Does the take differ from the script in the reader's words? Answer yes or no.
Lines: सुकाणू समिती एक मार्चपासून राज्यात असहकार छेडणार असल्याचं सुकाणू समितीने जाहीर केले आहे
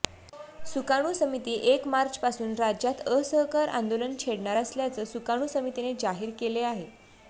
yes